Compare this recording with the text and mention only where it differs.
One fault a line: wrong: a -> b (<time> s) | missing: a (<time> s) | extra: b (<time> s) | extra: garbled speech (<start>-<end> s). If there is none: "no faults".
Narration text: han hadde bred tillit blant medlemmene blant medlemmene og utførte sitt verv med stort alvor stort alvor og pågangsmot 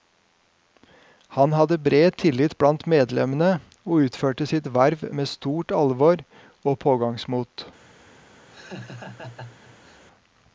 missing: blant medlemmene (3.5 s)
missing: stort alvor (6.3 s)